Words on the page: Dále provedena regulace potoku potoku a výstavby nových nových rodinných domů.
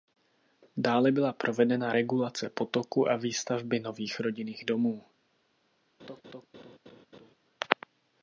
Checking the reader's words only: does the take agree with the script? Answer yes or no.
no